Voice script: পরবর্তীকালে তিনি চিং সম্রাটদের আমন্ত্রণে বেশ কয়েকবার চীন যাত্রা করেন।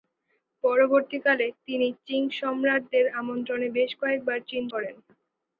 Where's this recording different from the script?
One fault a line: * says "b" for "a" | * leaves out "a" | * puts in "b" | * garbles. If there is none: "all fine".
* leaves out "যাত্রা"